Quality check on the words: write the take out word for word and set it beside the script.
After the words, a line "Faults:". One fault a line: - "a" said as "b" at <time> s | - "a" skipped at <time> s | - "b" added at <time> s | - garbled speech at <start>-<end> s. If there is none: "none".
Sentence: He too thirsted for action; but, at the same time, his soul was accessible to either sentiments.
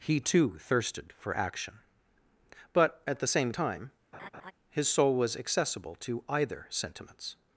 He too thirsted for action; but, at the same time, his soul was accessible to either sentiments.
Faults:
none